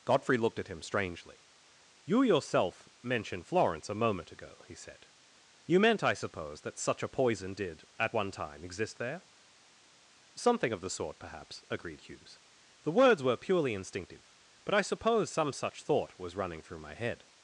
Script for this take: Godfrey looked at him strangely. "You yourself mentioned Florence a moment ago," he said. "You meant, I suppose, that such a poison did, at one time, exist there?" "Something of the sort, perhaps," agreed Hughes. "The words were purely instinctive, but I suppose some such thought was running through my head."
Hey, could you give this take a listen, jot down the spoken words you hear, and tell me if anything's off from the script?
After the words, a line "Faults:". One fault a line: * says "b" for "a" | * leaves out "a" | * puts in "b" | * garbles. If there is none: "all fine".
Godfrey looked at him strangely. "You yourself mentioned Florence a moment ago," he said. "You meant, I suppose, that such a poison did, at one time, exist there?" "Something of the sort, perhaps," agreed Hughes. "The words were purely instinctive, but I suppose some such thought was running through my head."
Faults:
all fine